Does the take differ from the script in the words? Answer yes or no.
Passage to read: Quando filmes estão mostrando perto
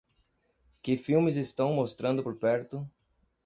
yes